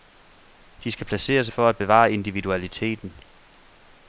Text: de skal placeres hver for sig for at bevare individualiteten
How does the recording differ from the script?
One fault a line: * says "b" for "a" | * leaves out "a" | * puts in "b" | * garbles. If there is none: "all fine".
* leaves out "hver for sig"